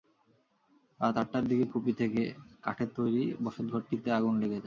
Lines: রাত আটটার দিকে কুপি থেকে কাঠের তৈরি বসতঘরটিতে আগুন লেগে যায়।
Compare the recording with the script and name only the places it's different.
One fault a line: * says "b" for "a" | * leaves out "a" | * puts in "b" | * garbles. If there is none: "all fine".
all fine